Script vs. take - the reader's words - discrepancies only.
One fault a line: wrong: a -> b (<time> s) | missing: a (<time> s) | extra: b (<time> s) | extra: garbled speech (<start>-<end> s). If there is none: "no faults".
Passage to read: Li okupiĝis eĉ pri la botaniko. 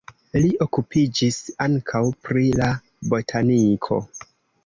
wrong: eĉ -> ankaŭ (1.6 s)